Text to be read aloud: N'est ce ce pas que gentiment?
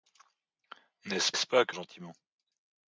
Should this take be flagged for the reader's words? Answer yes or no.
no